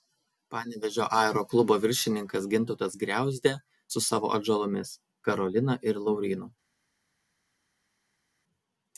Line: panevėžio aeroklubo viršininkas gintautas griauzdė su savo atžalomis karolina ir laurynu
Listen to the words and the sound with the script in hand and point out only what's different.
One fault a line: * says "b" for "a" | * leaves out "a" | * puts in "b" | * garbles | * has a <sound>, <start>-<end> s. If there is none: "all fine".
all fine